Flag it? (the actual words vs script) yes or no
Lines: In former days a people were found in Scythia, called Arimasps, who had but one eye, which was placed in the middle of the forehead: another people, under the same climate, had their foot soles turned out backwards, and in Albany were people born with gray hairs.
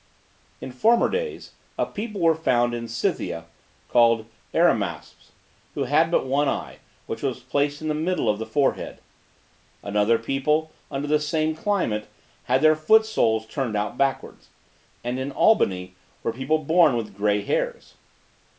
no